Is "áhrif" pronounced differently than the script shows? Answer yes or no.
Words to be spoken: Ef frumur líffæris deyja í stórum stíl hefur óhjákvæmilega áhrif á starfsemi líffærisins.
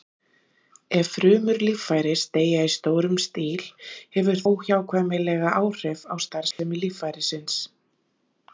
no